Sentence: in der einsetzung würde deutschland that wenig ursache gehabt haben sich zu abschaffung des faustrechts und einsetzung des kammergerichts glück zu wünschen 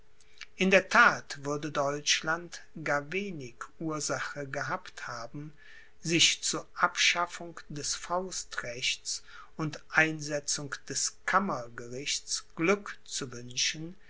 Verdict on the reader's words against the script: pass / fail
fail